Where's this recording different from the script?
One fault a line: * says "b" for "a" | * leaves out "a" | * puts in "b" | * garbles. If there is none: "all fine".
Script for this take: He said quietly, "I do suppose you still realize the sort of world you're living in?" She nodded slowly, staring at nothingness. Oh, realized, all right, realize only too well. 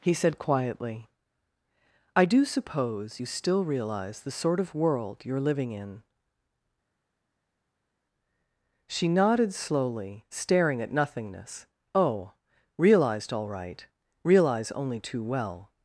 all fine